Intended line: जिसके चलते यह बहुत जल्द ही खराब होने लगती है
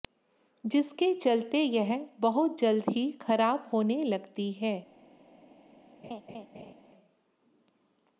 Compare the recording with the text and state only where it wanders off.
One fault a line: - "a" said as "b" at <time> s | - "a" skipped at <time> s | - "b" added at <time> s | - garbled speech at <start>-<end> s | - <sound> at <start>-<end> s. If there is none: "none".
- laugh at 6.0-6.7 s